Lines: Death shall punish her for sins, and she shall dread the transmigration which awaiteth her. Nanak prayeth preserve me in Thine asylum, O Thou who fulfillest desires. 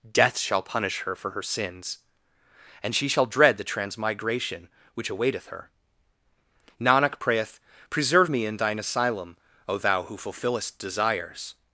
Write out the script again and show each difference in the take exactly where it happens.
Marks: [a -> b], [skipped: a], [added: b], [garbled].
Death shall punish her for [added: her] sins, and she shall dread the transmigration which awaiteth her. Nanak prayeth preserve me in Thine asylum, O Thou who fulfillest desires.